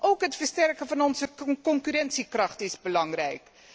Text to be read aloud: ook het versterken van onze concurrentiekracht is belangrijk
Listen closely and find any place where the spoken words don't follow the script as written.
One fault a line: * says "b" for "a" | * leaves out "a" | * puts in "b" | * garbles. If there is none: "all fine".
all fine